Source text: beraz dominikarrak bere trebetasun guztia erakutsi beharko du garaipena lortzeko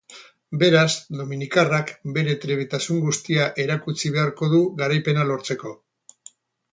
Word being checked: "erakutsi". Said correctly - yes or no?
yes